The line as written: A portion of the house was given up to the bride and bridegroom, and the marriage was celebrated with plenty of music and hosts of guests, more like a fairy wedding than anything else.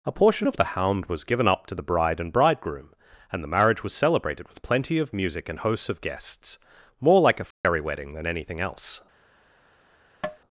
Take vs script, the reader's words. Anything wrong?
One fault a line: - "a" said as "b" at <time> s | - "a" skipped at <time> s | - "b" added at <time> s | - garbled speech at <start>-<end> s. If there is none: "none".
- "house" said as "hound" at 0.6 s